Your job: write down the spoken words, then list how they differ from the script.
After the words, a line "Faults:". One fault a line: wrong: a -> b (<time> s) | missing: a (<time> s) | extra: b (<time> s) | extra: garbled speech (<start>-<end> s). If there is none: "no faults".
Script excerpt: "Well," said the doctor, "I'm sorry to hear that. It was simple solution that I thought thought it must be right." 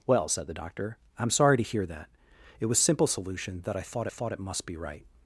"Well," said the doctor, "I'm sorry to hear that. It was simple solution that I thought thought it must be right."
Faults:
no faults